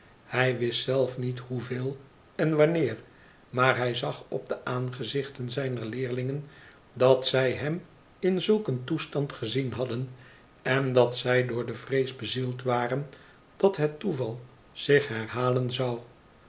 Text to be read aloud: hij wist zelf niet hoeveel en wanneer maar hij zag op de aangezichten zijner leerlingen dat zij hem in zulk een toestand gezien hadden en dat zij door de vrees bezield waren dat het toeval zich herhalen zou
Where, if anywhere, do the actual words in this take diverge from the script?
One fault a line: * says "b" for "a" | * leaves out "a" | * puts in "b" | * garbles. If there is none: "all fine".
all fine